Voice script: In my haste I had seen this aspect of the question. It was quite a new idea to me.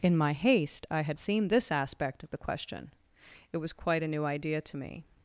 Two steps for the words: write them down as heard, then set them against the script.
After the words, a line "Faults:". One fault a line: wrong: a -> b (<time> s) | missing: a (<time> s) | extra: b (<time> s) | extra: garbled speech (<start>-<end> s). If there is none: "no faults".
In my haste I had seen this aspect of the question. It was quite a new idea to me.
Faults:
no faults